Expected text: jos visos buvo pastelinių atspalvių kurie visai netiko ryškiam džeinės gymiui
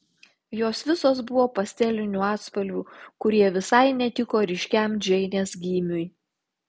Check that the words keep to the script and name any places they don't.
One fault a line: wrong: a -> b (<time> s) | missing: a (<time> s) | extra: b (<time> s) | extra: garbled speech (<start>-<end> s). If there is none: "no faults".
no faults